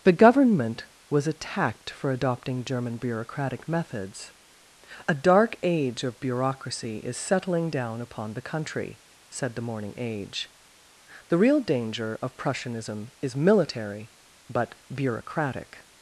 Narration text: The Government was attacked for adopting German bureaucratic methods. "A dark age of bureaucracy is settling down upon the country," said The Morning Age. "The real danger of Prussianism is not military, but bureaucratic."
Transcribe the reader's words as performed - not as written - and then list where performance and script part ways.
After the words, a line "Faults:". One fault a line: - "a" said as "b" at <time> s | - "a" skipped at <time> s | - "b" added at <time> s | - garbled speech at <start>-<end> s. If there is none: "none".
The Government was attacked for adopting German bureaucratic methods. "A dark age of bureaucracy is settling down upon the country," said The Morning Age. "The real danger of Prussianism is military, but bureaucratic."
Faults:
- "not" skipped at 13.4 s